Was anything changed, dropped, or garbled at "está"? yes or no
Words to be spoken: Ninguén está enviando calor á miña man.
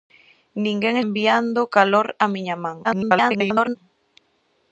yes